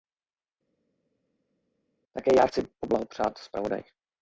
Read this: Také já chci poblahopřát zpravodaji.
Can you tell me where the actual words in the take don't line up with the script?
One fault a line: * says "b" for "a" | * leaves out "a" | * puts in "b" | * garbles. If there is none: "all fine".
all fine